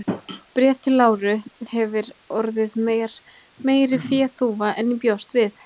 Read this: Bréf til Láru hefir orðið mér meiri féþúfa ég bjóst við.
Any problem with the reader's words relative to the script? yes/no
yes